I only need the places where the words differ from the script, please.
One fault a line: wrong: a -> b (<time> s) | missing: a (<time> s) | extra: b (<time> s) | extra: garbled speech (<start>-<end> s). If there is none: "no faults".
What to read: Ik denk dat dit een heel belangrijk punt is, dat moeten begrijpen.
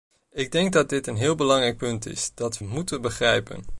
no faults